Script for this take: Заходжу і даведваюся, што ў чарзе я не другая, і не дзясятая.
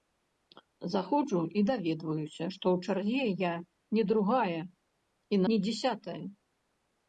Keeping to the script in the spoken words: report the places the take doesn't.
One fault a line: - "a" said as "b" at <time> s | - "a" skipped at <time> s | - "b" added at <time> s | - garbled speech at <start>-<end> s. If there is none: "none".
none